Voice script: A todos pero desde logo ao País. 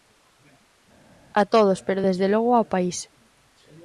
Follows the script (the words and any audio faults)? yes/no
yes